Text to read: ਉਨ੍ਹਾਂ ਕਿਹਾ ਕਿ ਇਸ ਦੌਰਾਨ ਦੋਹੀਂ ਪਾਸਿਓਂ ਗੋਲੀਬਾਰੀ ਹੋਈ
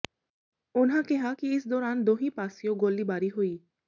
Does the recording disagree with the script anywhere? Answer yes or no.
no